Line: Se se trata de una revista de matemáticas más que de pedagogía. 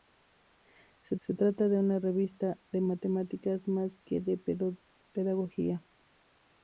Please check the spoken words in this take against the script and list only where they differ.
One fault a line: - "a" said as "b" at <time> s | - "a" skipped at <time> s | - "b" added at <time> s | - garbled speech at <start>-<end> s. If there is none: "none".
none